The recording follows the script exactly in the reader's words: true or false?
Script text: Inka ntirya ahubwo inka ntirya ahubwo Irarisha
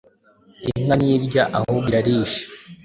false